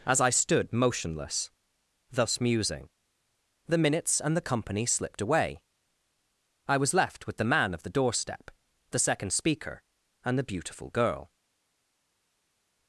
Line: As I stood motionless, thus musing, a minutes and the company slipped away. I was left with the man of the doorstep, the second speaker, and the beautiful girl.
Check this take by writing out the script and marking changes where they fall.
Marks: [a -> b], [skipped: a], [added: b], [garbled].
As I stood motionless, thus musing, [a -> the] minutes and the company slipped away. I was left with the man of the doorstep, the second speaker, and the beautiful girl.